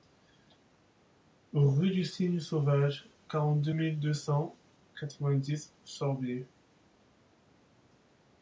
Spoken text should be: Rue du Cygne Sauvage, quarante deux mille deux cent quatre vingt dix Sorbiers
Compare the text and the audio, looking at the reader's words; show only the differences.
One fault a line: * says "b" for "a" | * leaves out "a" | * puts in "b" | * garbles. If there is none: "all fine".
all fine